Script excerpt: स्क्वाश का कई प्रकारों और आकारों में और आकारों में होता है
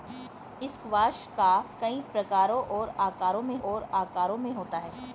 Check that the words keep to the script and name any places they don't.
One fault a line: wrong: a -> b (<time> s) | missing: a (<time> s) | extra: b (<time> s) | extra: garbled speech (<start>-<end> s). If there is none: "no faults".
no faults